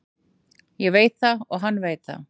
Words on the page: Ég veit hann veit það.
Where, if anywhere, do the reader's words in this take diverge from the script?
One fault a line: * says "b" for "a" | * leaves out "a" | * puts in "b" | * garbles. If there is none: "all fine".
* puts in "það og"